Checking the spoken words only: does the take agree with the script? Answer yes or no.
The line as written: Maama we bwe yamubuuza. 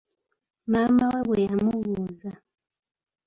yes